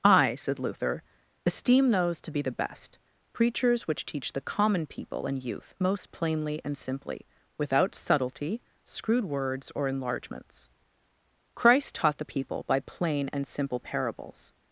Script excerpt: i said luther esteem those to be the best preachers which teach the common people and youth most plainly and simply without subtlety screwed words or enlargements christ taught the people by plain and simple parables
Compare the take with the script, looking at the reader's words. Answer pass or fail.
pass